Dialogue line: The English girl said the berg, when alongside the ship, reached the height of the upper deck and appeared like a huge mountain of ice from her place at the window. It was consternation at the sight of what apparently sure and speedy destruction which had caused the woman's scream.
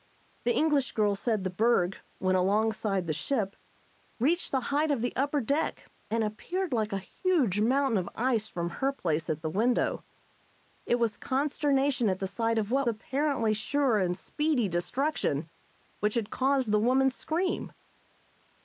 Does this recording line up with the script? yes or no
yes